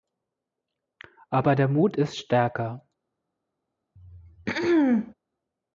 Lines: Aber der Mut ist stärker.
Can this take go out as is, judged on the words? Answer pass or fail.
pass